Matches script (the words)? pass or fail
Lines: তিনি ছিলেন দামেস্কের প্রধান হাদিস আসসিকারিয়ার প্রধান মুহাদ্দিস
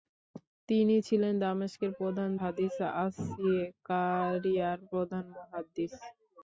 pass